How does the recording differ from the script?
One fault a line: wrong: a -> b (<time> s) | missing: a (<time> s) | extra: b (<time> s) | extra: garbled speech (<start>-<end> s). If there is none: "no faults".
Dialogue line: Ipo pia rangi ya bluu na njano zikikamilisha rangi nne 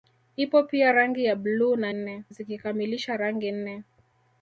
wrong: njano -> nne (1.9 s)